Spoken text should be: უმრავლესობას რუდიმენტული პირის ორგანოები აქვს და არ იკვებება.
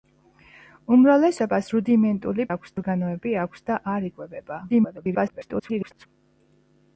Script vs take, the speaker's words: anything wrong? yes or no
yes